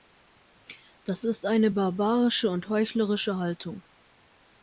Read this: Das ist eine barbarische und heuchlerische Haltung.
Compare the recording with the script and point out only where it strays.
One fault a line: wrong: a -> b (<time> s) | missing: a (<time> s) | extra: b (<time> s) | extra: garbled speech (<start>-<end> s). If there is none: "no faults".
no faults